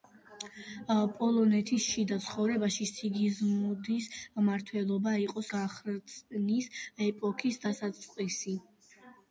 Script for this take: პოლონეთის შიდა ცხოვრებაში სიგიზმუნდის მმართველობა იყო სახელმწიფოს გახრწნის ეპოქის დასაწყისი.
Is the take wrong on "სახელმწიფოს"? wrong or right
wrong